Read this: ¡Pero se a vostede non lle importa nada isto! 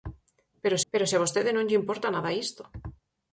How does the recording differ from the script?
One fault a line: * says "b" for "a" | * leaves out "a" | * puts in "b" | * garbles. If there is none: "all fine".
* puts in "pero"